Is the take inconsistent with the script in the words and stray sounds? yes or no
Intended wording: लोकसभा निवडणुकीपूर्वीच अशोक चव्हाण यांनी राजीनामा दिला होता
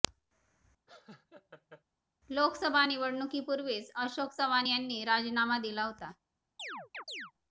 yes